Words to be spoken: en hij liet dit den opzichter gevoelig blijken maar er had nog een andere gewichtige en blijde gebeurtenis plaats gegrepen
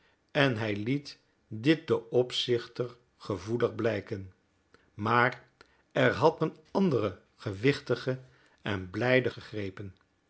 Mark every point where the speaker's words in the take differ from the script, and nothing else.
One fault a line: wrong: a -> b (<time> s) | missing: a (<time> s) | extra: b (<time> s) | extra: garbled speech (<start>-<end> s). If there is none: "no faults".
missing: nog (6.4 s)
missing: gebeurtenis plaats (9.3 s)